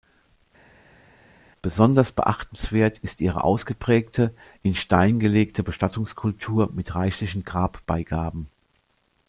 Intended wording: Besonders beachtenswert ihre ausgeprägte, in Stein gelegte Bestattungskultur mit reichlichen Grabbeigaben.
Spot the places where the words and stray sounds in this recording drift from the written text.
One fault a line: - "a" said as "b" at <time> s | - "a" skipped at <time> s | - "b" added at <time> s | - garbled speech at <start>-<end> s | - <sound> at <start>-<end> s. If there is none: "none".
- "ist" added at 3.0 s